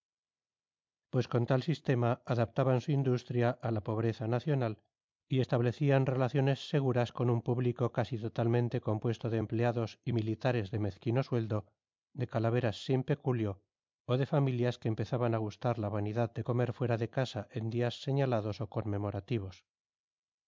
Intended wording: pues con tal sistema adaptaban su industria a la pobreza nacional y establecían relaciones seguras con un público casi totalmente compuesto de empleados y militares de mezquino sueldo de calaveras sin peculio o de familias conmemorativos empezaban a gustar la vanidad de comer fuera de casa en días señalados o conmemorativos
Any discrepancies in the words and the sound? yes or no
yes